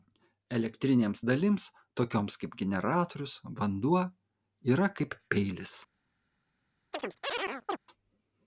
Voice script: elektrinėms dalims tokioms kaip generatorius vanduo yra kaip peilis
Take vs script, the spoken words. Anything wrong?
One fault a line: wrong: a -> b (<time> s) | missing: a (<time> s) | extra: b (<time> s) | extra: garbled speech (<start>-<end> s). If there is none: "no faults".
no faults